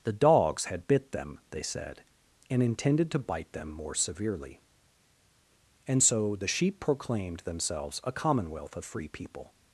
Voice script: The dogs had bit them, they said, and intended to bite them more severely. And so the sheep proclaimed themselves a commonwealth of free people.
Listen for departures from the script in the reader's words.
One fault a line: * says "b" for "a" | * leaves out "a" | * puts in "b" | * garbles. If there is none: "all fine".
all fine